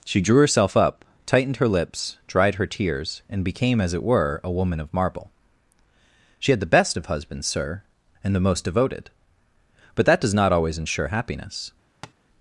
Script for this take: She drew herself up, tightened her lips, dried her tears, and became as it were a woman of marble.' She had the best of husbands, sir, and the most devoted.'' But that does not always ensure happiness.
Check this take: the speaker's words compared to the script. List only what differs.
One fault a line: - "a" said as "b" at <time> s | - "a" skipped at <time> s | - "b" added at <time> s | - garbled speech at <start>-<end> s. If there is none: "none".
none